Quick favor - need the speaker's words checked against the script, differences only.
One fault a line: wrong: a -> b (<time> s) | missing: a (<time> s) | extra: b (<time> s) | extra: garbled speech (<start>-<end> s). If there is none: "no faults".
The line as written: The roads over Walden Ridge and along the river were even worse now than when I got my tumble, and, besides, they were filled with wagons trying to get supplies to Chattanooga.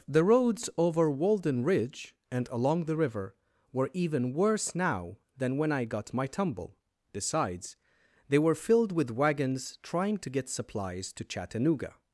missing: and (6.8 s)